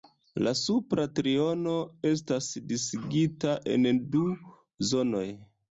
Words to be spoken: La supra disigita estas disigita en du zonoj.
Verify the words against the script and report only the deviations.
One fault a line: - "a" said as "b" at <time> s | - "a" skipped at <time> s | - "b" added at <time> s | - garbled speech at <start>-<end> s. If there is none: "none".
- "disigita" said as "triono" at 1.2 s